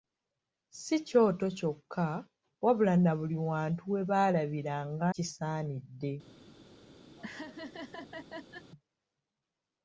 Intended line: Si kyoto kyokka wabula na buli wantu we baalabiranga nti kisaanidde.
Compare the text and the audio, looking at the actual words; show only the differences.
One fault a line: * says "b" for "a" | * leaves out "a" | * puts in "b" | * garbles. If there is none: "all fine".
* leaves out "nti"